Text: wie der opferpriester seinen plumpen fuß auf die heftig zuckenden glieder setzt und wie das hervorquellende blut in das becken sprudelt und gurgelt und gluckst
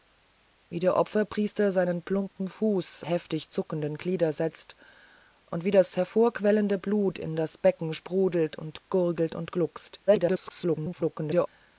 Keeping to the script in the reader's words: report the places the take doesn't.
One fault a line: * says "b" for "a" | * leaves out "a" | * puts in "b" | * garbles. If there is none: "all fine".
* leaves out "auf die"
* garbles